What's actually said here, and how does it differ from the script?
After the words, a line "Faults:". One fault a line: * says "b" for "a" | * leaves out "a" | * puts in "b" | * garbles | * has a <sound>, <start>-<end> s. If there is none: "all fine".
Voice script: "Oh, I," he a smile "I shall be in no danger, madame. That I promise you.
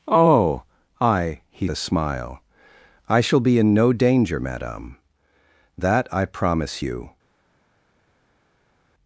"Oh, I," he a smile "I shall be in no danger, madame. That I promise you.
Faults:
all fine